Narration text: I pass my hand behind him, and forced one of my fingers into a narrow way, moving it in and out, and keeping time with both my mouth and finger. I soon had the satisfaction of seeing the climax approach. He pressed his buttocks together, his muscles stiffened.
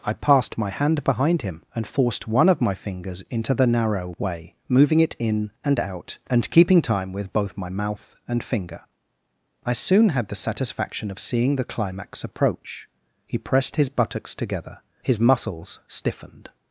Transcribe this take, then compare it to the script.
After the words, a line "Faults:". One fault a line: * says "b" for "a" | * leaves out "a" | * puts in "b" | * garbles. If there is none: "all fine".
I passed my hand behind him, and forced one of my fingers into the narrow way, moving it in and out, and keeping time with both my mouth and finger. I soon had the satisfaction of seeing the climax approach. He pressed his buttocks together, his muscles stiffened.
Faults:
* says "passed" for "pass"
* says "the" for "a"